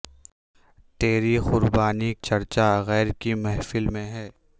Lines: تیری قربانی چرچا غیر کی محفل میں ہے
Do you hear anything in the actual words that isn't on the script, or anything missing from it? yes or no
no